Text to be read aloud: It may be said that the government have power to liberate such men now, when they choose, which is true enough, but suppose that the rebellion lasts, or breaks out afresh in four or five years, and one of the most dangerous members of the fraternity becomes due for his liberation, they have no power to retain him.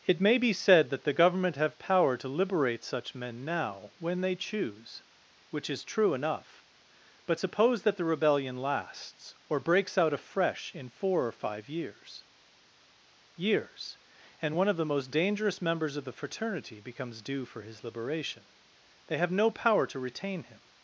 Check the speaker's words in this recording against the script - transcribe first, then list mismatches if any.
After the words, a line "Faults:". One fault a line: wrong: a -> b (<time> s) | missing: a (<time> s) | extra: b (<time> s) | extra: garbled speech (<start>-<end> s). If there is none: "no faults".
It may be said that the government have power to liberate such men now, when they choose, which is true enough, but suppose that the rebellion lasts, or breaks out afresh in four or five years years, and one of the most dangerous members of the fraternity becomes due for his liberation, they have no power to retain him.
Faults:
extra: years (13.4 s)